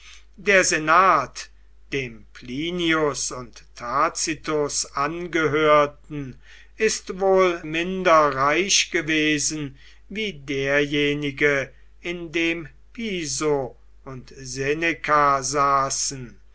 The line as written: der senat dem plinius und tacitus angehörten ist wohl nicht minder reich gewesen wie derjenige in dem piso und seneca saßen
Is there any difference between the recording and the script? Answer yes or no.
yes